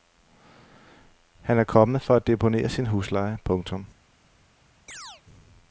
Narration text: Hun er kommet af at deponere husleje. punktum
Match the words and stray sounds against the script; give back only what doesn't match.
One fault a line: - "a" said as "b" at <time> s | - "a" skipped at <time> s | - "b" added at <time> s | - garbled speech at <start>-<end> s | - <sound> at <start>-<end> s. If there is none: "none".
- "Hun" said as "Han" at 1.4 s
- "af" said as "for" at 2.0 s
- "sin" added at 2.7 s
- chirp at 4.9-5.2 s